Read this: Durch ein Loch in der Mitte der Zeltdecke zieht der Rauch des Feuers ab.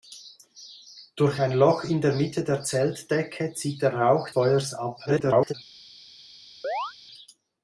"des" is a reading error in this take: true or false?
true